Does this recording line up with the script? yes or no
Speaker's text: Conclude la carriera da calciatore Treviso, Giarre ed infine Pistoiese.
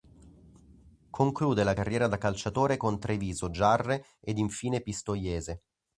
no